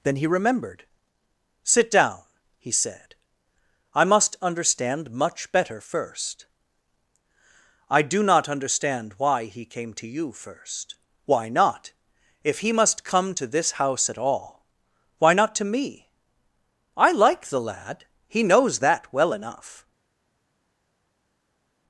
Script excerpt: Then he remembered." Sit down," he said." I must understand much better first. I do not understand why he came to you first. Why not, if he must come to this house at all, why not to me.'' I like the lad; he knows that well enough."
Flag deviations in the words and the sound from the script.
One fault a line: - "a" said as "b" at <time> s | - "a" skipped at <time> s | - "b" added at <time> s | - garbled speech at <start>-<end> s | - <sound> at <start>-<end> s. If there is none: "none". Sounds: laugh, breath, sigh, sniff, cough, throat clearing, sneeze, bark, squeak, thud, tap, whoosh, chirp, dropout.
none